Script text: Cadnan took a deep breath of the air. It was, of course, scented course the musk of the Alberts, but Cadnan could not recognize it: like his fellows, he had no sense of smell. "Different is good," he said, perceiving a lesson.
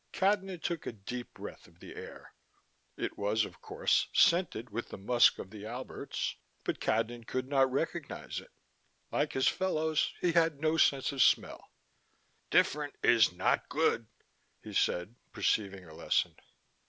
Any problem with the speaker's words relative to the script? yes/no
yes